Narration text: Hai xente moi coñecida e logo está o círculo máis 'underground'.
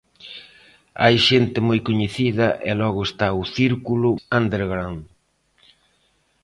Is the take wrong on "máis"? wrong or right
wrong